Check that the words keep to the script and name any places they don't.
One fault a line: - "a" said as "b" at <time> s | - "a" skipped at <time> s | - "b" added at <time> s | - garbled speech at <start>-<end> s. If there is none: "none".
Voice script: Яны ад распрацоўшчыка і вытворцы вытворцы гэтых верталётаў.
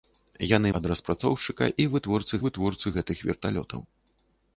none